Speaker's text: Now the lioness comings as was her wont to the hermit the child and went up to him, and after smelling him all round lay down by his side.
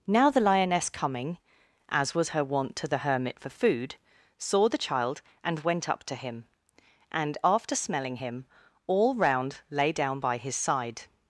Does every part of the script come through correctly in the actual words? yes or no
no